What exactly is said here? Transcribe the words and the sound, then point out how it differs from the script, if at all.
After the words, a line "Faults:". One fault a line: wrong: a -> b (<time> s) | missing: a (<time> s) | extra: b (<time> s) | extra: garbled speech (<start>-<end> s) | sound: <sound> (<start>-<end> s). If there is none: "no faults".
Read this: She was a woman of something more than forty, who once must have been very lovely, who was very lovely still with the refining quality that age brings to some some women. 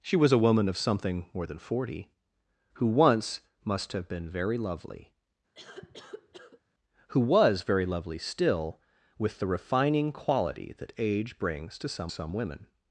She was a woman of something more than forty, who once must have been very lovely, who was very lovely still with the refining quality that age brings to some some women.
Faults:
sound: cough (5.5-6.6 s)